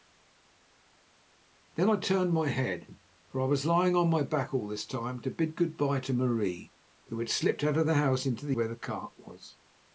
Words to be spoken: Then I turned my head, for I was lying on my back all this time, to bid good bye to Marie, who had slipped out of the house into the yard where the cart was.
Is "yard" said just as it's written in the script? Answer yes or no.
no